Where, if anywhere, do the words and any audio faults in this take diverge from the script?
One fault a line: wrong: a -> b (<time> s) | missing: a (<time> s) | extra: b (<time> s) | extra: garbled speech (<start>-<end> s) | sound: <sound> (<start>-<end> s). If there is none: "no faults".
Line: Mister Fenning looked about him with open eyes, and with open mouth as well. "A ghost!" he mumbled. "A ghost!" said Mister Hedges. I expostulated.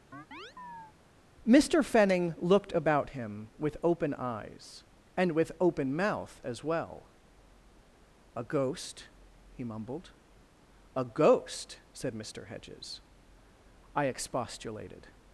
sound: chirp (0.1-1.0 s)